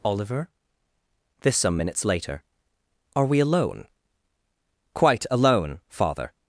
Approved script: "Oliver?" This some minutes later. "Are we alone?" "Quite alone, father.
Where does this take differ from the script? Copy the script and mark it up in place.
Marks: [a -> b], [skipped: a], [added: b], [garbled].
"Oliver?" This some minutes later. "Are we alone?" "Quite alone, father.